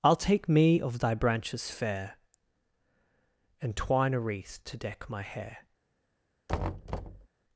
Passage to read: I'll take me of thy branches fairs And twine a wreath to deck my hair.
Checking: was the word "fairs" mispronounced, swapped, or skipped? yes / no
yes